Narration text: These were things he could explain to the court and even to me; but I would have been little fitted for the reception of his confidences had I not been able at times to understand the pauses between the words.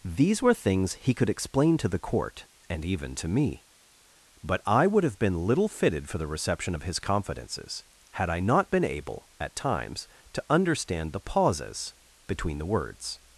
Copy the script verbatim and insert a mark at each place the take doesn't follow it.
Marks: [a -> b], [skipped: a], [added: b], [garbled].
These were things he could explain to the court and even to me; but I would have been little fitted for the reception of his confidences had I not been able at times to understand the pauses between the words.